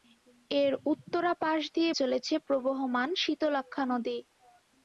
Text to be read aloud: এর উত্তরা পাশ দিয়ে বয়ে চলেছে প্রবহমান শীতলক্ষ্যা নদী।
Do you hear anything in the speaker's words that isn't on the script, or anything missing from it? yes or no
yes